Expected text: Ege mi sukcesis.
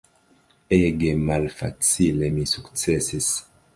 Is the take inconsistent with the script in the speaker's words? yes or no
yes